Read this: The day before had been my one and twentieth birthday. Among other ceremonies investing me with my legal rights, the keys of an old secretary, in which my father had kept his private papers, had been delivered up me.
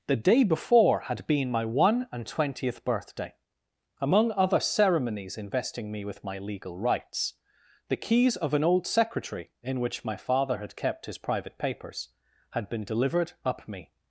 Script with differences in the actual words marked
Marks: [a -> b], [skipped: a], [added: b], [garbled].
The day before had been my one and twentieth birthday. Among other ceremonies investing me with my legal rights, the keys of an old secretary, in which my father had kept his private papers, had been delivered up me.